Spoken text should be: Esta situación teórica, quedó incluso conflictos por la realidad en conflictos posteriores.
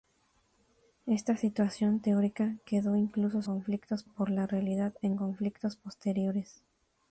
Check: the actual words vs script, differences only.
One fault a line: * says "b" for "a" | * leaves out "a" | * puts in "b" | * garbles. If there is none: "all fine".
all fine